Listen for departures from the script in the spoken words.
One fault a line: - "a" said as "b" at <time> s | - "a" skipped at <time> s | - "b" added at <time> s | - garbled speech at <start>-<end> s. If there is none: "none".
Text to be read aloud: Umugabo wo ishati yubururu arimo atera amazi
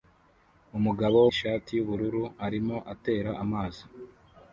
none